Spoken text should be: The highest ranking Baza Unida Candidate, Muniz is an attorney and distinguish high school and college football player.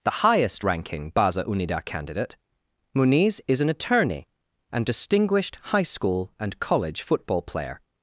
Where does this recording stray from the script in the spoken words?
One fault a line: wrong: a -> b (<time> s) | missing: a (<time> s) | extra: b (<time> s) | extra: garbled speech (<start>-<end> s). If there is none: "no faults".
wrong: distinguish -> distinguished (4.8 s)